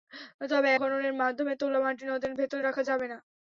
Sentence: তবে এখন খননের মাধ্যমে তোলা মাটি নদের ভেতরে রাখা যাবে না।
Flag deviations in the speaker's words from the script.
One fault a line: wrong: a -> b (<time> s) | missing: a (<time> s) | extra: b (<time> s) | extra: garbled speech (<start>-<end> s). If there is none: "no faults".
missing: এখন (0.7 s)